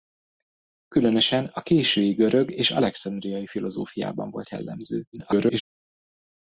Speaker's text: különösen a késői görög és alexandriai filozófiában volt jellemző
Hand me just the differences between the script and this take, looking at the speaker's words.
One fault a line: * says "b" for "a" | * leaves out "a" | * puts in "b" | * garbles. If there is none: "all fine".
* garbles